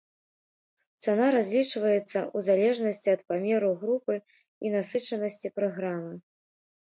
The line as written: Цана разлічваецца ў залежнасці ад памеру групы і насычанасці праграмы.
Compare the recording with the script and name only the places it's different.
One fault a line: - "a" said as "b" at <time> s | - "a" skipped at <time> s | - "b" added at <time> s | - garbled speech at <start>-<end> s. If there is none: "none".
none